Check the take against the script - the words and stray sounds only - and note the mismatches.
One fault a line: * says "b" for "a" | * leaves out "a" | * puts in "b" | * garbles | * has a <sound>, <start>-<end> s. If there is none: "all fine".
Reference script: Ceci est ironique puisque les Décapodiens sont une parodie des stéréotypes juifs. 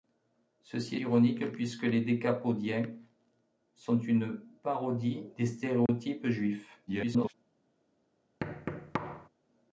* leaves out "est"
* has a dropout, 5.9-5.9 s
* garbles
* has a thud, 8.4-9.3 s